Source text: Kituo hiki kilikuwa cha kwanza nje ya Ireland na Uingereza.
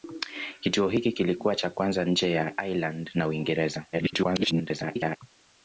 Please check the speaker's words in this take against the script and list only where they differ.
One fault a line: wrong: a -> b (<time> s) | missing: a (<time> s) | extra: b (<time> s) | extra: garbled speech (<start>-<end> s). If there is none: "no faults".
extra: garbled speech (3.9-5.2 s)